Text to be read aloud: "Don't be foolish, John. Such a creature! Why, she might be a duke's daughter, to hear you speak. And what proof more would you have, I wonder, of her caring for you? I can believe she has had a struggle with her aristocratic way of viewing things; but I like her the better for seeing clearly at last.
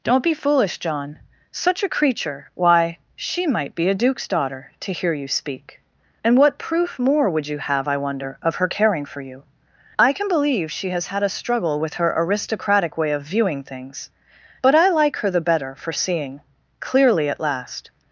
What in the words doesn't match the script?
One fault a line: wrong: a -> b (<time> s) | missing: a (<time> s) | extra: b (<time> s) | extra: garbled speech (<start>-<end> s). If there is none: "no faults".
no faults